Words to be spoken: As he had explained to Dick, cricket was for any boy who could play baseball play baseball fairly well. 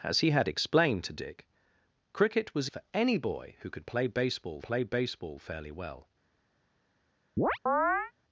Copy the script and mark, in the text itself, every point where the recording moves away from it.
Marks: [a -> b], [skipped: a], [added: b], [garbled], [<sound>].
As he had explained to Dick, cricket was for any boy who could play baseball play baseball fairly well. [chirp]